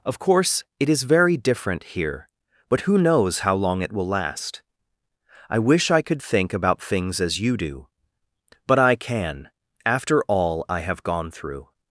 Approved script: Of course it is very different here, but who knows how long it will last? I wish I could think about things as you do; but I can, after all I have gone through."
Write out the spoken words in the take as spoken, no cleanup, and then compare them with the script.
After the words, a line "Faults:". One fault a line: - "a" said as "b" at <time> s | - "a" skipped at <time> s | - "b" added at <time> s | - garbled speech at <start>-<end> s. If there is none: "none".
Of course it is very different here, but who knows how long it will last? I wish I could think about things as you do; but I can, after all I have gone through."
Faults:
none